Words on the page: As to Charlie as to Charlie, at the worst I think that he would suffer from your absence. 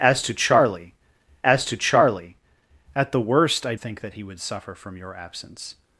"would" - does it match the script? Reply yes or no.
yes